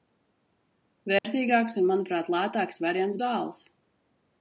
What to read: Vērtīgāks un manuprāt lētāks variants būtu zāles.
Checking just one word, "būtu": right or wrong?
wrong